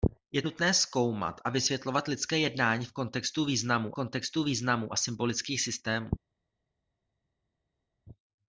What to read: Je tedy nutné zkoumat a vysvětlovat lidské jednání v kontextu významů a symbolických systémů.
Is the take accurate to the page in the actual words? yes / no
no